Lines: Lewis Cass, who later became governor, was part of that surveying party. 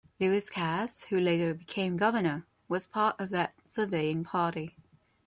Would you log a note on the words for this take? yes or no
no